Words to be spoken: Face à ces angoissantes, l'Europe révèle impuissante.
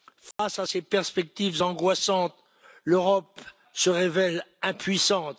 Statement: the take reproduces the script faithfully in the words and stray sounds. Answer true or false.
false